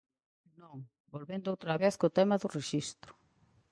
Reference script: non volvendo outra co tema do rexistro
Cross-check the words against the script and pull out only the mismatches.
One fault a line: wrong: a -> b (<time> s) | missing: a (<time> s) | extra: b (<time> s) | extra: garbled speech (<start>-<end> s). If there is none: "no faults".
extra: vez (1.8 s)